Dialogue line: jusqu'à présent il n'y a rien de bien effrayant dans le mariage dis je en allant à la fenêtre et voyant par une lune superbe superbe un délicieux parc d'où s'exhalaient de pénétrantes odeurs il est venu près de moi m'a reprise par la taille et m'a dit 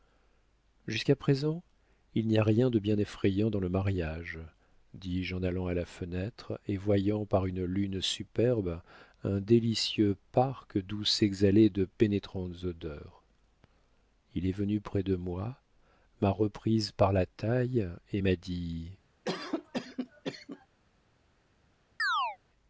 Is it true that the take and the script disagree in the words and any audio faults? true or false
true